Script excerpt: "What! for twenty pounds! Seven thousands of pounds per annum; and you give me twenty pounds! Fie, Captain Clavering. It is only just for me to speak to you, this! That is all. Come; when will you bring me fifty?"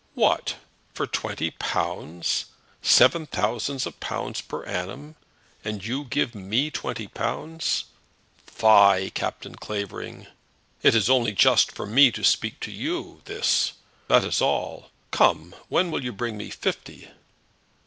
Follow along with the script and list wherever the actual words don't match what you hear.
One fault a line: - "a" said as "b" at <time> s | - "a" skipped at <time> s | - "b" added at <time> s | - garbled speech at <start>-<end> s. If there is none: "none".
none